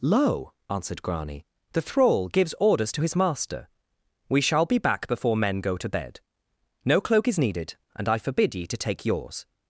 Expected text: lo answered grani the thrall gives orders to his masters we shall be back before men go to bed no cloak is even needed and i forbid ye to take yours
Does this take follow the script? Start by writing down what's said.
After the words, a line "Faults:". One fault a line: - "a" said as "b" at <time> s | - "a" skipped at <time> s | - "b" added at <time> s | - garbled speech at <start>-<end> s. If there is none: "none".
lo answered grani the thrall gives orders to his master we shall be back before men go to bed no cloak is needed and i forbid ye to take yours
Faults:
- "masters" said as "master" at 3.1 s
- "even" skipped at 7.4 s